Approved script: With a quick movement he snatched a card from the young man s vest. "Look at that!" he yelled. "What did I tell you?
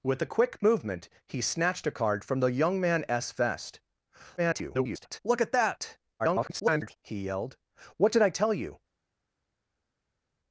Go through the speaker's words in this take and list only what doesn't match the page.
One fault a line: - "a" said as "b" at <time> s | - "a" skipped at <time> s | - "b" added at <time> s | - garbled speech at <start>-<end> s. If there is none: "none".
- garbled speech at 4.4-5.2 s
- garbled speech at 6.2-7.0 s